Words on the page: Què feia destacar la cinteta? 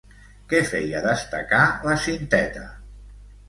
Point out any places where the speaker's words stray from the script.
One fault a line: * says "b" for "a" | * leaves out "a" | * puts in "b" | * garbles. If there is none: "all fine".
all fine